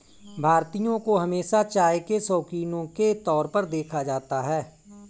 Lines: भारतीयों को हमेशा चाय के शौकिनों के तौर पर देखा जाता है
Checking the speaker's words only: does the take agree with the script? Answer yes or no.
yes